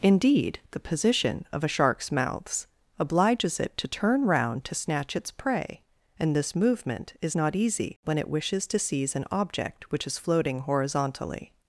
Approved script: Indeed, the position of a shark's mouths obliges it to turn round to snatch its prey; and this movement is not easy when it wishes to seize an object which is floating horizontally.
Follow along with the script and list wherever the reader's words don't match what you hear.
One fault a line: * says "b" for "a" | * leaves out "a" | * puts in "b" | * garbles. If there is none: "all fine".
all fine